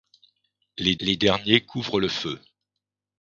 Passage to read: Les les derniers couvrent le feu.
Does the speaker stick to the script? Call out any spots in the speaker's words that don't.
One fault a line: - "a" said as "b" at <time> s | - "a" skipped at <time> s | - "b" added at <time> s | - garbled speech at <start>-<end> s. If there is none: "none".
none